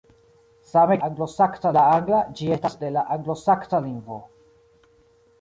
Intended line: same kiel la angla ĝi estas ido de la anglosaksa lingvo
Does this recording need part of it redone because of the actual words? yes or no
yes